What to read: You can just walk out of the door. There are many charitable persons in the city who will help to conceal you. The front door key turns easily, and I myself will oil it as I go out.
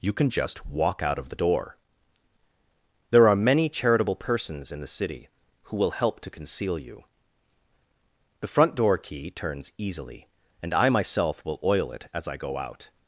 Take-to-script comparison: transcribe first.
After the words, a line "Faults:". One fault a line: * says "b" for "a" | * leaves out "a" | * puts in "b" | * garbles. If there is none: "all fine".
You can just walk out of the door. There are many charitable persons in the city who will help to conceal you. The front door key turns easily, and I myself will oil it as I go out.
Faults:
all fine